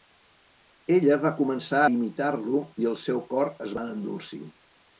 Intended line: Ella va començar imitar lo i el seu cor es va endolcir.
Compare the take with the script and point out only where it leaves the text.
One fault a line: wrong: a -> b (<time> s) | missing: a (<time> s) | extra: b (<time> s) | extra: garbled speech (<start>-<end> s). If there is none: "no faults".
no faults